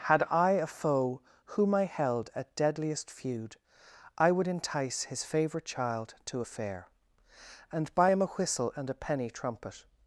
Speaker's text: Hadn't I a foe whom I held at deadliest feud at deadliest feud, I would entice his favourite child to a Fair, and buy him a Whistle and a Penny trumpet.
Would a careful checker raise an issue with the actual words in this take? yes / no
yes